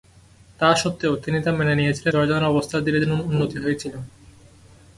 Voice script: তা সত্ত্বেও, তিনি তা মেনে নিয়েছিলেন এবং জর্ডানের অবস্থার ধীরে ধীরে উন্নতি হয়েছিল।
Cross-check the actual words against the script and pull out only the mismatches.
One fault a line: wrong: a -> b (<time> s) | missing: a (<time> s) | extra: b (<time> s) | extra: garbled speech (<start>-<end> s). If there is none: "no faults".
missing: এবং (2.1 s)